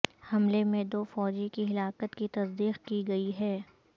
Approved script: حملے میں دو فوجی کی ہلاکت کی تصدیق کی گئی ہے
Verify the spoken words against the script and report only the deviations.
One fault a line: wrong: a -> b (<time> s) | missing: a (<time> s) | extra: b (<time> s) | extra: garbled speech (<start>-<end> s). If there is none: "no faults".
no faults